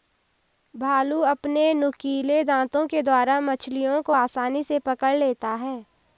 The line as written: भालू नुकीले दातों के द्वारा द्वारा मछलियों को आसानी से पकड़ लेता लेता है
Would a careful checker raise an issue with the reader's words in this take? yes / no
yes